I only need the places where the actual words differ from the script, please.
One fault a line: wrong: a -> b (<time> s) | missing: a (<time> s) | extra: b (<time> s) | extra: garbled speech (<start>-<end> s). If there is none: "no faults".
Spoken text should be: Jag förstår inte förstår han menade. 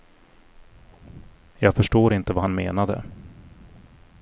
wrong: förstår -> vad (2.3 s)